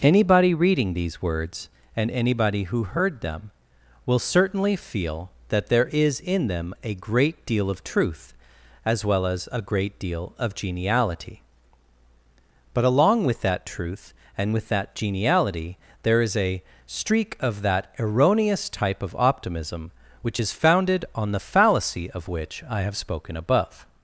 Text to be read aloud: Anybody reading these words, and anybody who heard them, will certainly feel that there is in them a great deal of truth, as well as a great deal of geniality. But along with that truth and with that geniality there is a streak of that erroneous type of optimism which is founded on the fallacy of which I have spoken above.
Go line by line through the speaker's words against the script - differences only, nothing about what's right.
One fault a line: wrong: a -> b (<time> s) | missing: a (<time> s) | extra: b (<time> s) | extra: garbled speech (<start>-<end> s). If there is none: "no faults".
no faults